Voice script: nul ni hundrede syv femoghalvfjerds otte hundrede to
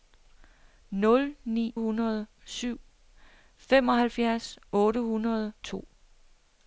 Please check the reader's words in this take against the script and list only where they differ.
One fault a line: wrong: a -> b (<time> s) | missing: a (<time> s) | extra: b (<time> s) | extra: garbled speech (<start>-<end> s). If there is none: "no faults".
no faults